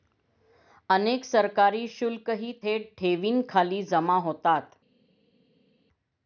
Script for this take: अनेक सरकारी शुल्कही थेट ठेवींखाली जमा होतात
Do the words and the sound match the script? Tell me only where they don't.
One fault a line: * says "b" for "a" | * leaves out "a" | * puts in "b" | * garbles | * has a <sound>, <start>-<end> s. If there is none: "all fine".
all fine